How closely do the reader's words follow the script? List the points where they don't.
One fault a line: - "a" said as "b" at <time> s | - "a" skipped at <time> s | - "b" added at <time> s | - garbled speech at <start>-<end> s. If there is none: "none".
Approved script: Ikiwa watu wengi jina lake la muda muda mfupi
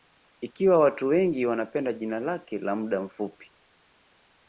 - "wanapenda" added at 1.4 s
- "muda" skipped at 3.0 s